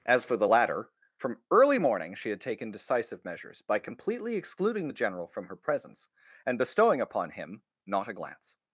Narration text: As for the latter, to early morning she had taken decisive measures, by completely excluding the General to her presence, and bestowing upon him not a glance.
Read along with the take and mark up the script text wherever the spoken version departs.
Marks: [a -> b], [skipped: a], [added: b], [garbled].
As for the latter, [to -> from] early morning she had taken decisive measures, by completely excluding the General [to -> from] her presence, and bestowing upon him not a glance.